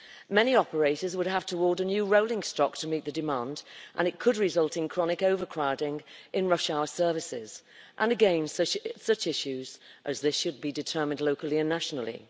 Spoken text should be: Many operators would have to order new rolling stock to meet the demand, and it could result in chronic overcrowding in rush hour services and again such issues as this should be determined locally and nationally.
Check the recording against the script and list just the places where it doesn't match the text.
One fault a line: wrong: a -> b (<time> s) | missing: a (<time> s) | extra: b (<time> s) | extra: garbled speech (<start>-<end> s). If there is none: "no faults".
no faults